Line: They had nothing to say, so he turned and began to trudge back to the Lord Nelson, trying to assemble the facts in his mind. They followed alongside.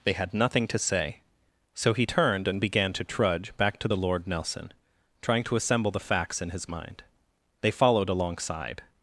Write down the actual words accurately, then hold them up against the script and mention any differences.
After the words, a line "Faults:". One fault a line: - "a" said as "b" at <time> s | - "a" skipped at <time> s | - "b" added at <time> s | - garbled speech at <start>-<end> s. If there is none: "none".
They had nothing to say, so he turned and began to trudge back to the Lord Nelson, trying to assemble the facts in his mind. They followed alongside.
Faults:
none